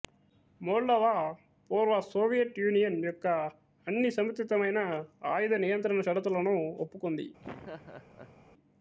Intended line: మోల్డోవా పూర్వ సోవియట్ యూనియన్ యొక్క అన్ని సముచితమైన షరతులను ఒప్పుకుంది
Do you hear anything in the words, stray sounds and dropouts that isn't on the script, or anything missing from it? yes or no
yes